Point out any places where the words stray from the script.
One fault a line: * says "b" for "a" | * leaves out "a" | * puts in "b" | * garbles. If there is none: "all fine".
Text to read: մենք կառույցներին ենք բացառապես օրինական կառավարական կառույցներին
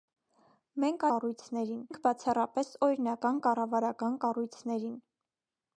all fine